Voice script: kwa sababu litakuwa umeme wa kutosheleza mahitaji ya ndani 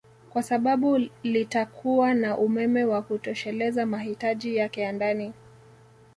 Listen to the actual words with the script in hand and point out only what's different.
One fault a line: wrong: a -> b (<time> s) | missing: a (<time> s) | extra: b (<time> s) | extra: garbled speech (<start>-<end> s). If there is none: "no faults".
extra: na (2.1 s)
extra: yake (4.5 s)